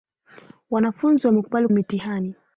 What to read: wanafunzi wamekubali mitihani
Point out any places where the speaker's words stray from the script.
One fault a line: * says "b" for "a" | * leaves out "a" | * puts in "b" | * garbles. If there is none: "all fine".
all fine